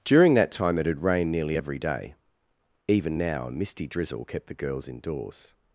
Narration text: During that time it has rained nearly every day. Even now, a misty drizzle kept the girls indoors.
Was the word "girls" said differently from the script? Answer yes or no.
no